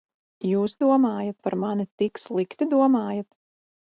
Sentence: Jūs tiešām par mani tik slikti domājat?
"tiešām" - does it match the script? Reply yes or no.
no